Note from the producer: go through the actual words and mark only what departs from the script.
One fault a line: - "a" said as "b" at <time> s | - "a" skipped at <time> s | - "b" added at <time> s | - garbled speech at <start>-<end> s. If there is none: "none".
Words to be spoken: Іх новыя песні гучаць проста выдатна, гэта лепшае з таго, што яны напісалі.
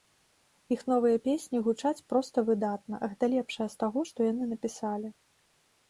none